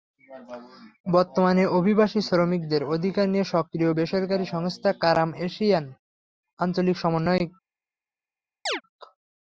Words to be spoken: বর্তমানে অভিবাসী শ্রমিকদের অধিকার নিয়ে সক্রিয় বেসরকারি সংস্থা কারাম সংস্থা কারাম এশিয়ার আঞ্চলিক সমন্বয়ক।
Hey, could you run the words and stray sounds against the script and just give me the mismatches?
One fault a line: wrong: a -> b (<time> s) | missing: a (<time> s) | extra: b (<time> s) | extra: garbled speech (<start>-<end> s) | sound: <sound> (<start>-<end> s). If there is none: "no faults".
missing: সংস্থা কারাম (5.3 s)
sound: chirp (8.7-8.8 s)